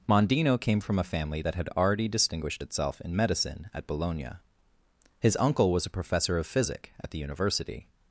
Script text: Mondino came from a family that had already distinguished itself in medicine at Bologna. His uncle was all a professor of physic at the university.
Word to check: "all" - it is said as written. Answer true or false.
false